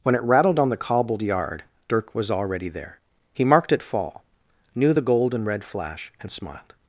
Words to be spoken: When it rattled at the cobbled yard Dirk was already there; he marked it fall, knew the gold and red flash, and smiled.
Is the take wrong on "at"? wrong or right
wrong